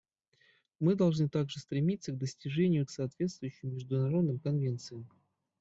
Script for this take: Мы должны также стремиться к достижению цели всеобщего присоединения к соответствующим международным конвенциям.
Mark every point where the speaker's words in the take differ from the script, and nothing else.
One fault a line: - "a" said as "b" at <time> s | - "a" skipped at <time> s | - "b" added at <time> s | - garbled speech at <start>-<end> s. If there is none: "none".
- "цели всеобщего присоединения" skipped at 2.9 s